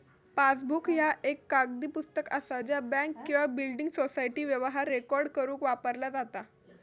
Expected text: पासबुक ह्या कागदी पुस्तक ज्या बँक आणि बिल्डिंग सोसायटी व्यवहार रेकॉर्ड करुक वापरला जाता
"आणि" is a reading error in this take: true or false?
true